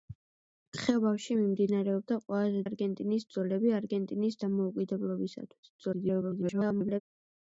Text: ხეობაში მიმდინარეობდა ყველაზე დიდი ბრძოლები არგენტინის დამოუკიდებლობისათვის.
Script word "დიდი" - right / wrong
wrong